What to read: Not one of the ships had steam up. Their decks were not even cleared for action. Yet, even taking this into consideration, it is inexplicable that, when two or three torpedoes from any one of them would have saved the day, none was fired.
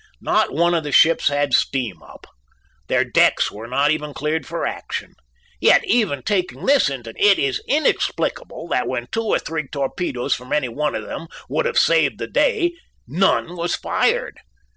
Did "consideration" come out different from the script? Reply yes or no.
yes